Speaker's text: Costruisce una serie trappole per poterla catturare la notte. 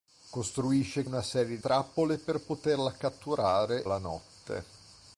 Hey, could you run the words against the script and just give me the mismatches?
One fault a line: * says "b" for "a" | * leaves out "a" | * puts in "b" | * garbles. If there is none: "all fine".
all fine